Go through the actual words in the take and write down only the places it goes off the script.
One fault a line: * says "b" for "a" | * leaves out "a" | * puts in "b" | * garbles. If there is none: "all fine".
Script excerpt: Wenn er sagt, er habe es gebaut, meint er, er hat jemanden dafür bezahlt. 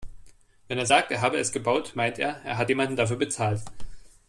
all fine